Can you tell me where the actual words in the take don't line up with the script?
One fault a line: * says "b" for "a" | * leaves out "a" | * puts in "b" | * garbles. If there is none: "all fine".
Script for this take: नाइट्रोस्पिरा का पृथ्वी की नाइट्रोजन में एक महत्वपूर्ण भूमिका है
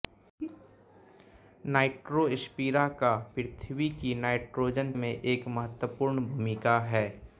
all fine